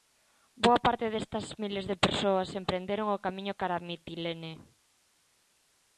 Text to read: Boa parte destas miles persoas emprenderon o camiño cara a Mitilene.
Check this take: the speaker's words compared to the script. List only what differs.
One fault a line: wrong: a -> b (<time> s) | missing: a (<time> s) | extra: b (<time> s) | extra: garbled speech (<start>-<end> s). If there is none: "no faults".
extra: de (1.9 s)